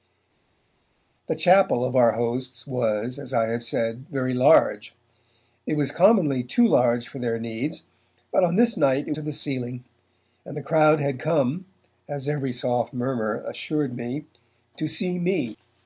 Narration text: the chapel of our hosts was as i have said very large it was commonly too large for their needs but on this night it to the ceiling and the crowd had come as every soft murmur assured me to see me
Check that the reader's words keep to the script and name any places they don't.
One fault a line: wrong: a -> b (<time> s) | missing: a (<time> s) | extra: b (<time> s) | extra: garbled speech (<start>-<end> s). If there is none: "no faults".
no faults